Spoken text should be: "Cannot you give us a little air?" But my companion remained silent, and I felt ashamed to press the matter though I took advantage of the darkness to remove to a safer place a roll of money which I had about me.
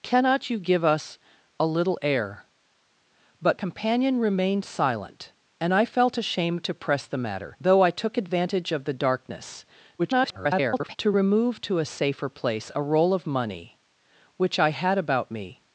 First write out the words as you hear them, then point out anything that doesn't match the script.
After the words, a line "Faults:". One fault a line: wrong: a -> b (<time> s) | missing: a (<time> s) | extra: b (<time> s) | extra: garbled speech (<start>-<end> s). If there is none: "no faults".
"Cannot you give us a little air?" But companion remained silent, and I felt ashamed to press the matter though I took advantage of the darkness [garbled] to remove to a safer place a roll of money which I had about me.
Faults:
missing: my (3.6 s)
extra: garbled speech (10.0-11.0 s)